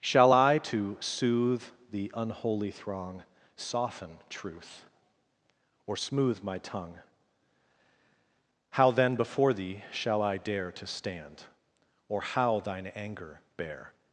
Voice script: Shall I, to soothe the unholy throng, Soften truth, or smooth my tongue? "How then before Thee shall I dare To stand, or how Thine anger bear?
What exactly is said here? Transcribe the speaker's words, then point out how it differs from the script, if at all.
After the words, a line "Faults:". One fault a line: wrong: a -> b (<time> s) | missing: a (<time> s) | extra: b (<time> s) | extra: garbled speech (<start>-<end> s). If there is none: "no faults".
Shall I, to soothe the unholy throng, Soften truth, or smooth my tongue? "How then before Thee shall I dare To stand, or how Thine anger bear?
Faults:
no faults